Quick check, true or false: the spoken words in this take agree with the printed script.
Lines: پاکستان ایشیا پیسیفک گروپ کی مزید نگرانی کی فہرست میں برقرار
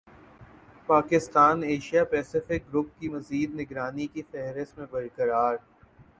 true